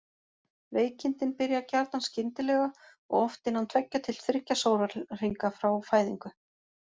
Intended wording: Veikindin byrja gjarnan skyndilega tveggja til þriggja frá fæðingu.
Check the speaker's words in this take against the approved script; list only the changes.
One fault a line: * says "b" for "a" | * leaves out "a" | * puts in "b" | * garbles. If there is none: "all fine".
* puts in "og oft innan"
* puts in "sólarhringa"